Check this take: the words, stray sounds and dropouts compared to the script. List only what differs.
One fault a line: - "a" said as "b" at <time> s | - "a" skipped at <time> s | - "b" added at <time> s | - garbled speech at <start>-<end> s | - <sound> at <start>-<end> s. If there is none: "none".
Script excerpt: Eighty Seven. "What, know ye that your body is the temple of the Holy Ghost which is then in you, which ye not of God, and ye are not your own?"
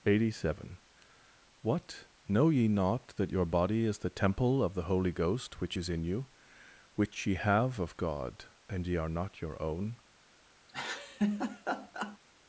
- "not" added at 2.7 s
- "then" skipped at 5.9 s
- "not" said as "have" at 7.3 s
- laugh at 10.7-12.2 s